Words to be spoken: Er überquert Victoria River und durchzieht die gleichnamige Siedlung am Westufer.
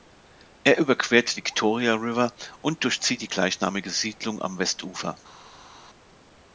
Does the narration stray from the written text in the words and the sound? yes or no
no